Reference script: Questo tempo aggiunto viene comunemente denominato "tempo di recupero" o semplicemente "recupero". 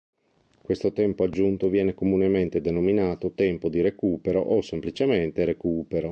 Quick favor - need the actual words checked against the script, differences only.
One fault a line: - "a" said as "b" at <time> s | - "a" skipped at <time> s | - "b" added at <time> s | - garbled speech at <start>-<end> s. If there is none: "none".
none